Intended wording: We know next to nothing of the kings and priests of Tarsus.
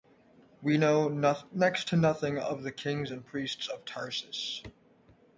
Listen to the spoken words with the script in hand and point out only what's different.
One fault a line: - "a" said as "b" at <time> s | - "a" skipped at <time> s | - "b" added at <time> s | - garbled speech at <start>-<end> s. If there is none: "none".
none